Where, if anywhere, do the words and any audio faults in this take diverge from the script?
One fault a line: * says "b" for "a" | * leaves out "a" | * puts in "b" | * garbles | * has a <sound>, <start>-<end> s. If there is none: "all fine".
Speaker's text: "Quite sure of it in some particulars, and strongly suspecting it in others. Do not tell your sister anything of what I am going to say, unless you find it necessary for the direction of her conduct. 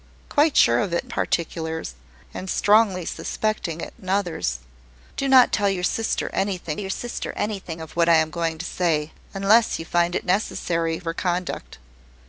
* leaves out "some"
* puts in "your sister anything"
* leaves out "for the direction"